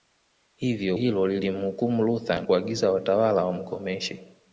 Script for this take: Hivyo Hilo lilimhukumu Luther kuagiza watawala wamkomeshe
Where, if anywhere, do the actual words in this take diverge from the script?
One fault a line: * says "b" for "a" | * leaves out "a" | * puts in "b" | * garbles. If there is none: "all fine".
all fine